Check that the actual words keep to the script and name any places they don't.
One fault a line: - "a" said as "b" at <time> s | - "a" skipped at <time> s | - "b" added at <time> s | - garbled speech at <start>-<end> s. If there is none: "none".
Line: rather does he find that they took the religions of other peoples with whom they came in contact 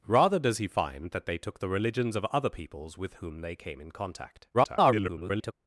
- garbled speech at 4.5-5.5 s